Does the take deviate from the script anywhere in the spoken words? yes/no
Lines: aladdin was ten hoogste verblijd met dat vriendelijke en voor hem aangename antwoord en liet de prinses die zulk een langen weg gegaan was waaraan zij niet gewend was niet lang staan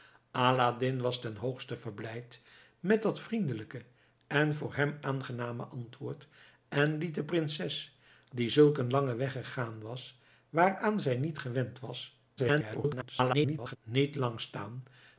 yes